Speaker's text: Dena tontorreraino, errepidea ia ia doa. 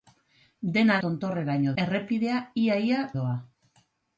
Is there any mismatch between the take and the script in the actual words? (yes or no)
no